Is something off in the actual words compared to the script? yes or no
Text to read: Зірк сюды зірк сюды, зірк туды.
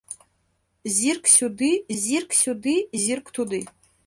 no